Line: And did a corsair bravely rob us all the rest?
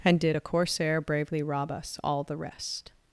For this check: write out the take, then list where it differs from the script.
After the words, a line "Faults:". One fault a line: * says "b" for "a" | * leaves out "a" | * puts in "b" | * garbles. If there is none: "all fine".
And did a corsair bravely rob us all the rest?
Faults:
all fine